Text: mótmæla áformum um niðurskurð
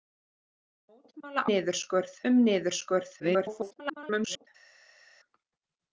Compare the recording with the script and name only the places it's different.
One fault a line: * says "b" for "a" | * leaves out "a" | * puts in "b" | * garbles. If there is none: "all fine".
* says "niðurskurð" for "áformum"
* garbles